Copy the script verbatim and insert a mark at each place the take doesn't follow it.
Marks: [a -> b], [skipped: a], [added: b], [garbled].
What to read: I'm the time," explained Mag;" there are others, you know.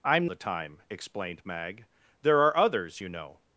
I'm the time," explained Mag;" there are others, you know.